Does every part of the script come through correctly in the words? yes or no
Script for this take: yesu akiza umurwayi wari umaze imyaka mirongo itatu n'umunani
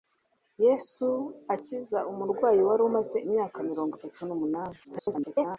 no